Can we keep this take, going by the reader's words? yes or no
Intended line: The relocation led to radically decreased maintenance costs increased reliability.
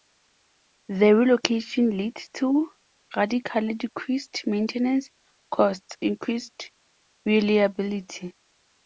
yes